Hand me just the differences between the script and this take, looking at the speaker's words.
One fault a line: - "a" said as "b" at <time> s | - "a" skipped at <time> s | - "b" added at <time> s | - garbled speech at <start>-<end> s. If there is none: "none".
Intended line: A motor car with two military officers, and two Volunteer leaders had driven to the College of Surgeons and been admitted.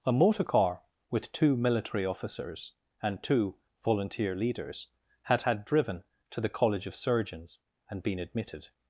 - "had" added at 5.4 s